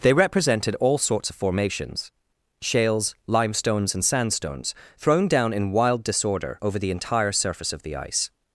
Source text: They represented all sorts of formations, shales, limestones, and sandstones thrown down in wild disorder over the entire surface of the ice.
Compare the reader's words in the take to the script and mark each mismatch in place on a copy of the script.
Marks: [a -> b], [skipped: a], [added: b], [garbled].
They represented all sorts of formations, shales, limestones, and sandstones thrown down in wild disorder over the entire surface of the ice.